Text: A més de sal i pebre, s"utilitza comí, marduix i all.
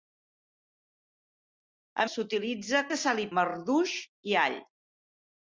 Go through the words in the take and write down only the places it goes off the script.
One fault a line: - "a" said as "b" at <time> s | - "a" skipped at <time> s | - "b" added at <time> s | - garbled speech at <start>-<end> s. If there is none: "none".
- "més" said as "s"utilitza" at 2.1 s
- "pebre s"utilitza comí" skipped at 3.3 s